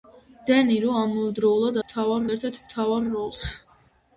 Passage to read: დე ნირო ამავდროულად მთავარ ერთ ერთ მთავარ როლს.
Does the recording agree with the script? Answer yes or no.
yes